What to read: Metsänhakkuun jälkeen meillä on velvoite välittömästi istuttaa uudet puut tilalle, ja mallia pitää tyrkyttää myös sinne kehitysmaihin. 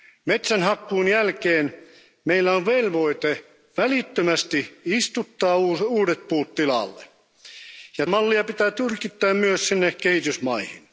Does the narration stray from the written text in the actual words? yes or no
no